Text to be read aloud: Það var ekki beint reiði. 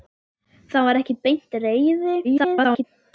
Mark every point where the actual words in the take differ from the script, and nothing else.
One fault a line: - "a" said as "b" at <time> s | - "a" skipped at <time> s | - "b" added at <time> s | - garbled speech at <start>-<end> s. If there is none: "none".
- garbled speech at 2.2-2.8 s